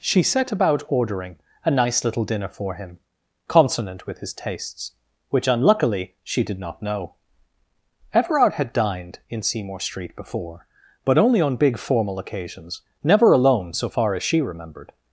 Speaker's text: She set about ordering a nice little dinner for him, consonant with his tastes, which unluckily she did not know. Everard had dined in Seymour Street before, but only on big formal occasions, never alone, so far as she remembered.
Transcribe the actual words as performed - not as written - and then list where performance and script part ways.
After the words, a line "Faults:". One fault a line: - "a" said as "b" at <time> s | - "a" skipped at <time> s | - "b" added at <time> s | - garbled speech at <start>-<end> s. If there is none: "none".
She set about ordering a nice little dinner for him, consonant with his tastes, which unluckily she did not know. Everard had dined in Seymour Street before, but only on big formal occasions, never alone, so far as she remembered.
Faults:
none